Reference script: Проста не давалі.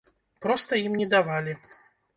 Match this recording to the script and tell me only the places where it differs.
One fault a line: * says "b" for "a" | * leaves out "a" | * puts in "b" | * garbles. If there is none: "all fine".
* puts in "ім"